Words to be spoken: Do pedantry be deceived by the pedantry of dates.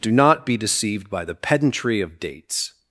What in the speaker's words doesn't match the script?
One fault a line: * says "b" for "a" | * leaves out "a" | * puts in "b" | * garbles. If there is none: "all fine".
* says "not" for "pedantry"